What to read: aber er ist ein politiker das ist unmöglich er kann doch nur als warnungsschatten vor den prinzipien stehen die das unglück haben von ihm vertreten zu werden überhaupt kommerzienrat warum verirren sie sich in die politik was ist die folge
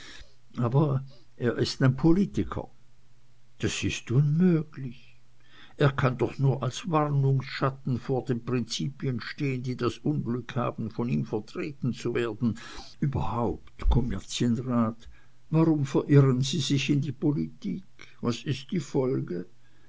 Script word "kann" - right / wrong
right